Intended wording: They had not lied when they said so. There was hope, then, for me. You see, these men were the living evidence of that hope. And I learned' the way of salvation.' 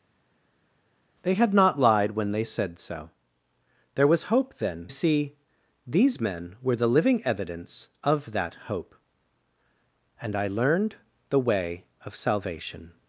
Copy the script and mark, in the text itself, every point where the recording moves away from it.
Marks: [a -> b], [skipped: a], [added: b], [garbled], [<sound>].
They had not lied when they said so. There was hope, then, [skipped: for me. You] see, these men were the living evidence of that hope. And I learned' the way of salvation.'